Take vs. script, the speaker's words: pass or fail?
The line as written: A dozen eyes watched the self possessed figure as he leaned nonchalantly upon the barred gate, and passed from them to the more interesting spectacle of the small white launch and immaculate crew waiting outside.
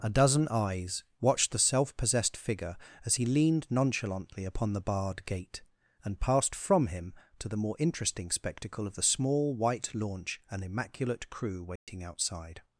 fail